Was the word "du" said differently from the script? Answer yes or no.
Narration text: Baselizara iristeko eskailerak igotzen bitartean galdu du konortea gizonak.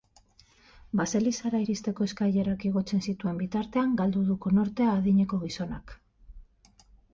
no